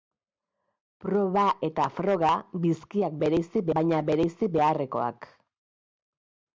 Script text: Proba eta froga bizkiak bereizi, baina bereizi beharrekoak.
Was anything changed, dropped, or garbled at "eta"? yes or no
no